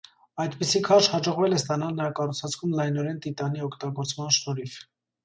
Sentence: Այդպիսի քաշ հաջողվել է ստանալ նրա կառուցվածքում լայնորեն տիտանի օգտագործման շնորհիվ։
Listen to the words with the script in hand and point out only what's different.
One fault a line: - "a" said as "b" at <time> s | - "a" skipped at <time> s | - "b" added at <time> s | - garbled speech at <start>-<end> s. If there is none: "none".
none